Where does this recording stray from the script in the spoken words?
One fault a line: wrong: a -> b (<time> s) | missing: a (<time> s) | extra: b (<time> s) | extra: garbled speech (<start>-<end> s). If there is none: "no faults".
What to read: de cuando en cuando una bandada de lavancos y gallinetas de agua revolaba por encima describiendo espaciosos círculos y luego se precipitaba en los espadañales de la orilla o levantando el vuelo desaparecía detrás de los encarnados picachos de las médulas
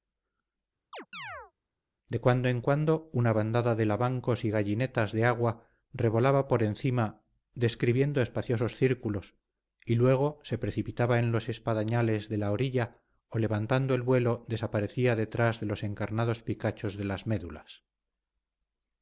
no faults